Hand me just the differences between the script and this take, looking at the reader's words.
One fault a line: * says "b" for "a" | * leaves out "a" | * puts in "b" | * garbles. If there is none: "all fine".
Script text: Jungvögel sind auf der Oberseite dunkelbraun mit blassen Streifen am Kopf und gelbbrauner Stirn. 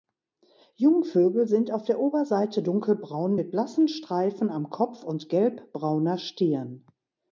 all fine